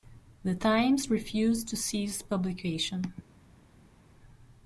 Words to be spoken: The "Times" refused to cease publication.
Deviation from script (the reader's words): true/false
false